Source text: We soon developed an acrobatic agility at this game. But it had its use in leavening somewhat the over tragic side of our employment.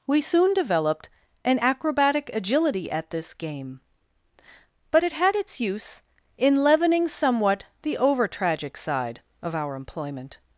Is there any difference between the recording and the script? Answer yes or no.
no